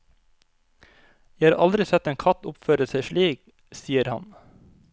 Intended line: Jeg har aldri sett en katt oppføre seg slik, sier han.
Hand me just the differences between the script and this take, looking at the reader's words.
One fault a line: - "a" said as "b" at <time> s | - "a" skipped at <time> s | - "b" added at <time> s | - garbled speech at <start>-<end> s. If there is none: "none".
none